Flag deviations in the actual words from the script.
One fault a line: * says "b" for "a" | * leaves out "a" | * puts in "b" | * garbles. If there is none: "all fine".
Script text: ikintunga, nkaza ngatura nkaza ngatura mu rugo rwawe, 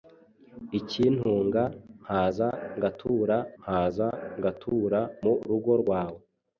all fine